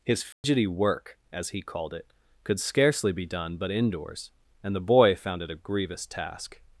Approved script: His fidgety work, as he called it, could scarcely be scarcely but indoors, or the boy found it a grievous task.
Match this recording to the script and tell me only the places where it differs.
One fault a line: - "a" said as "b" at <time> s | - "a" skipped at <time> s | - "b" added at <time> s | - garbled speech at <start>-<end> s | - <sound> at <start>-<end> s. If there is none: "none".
- dropout at 0.3-0.4 s
- "scarcely" said as "done" at 3.3 s
- "or" said as "and" at 4.6 s